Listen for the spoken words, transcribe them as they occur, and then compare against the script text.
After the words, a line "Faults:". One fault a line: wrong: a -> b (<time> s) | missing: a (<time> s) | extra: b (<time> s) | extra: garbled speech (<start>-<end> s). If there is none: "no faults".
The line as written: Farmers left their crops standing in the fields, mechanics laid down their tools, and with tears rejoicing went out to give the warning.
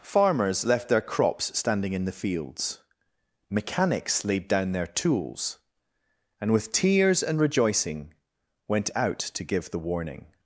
Farmers left their crops standing in the fields, mechanics laid down their tools, and with tears and rejoicing went out to give the warning.
Faults:
extra: and (7.2 s)